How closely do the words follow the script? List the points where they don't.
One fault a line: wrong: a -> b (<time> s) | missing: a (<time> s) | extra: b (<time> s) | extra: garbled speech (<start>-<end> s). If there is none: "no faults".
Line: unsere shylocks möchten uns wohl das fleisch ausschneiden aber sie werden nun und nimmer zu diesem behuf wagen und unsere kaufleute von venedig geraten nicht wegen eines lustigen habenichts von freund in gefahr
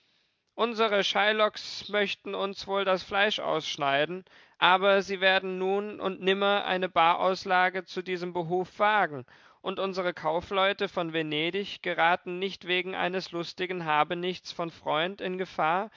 extra: eine barauslage (6.7 s)